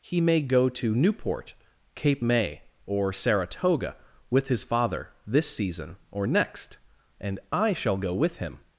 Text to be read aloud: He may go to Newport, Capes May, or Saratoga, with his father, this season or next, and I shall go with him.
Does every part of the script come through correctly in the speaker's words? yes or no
no